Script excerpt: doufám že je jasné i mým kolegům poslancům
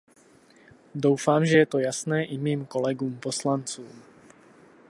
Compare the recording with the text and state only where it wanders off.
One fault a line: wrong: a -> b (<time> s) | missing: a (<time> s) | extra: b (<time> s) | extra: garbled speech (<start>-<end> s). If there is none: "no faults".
extra: to (1.7 s)